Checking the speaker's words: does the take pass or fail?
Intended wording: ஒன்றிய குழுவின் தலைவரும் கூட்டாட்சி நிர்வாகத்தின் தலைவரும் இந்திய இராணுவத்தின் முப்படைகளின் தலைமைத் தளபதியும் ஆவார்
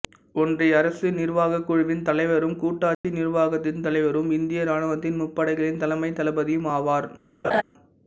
fail